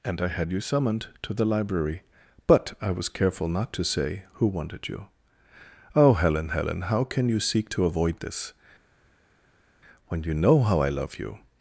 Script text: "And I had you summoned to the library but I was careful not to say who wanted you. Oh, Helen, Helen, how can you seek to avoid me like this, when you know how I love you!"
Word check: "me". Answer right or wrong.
wrong